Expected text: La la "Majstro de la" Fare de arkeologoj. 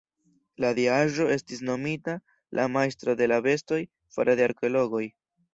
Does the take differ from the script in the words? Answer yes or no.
yes